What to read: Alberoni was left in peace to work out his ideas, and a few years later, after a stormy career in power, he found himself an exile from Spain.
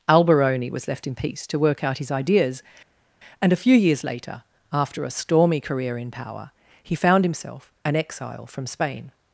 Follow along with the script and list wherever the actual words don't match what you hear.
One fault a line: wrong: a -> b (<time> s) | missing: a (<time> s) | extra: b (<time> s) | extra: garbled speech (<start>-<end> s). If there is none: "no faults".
no faults